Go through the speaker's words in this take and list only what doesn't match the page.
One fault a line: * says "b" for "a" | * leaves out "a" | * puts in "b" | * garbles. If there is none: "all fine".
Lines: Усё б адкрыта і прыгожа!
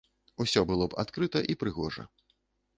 * puts in "было"